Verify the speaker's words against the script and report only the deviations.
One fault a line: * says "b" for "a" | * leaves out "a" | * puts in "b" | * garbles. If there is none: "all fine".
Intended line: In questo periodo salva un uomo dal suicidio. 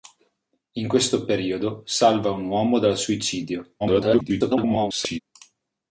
* garbles